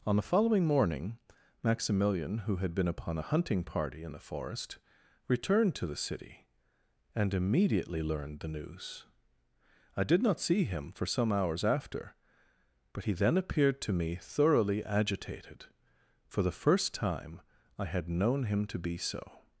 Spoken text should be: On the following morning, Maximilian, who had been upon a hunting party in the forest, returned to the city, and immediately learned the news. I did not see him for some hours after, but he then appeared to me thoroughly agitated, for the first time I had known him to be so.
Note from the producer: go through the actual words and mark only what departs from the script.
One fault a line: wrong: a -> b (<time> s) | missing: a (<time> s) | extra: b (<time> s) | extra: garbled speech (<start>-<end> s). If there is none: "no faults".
no faults